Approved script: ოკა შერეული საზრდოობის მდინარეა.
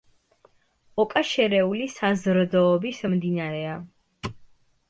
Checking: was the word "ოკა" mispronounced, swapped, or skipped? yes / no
no